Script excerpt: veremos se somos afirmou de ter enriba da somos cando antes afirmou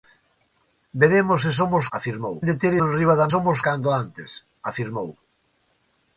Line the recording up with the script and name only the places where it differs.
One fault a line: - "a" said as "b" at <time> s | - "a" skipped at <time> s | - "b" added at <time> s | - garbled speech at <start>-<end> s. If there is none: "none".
none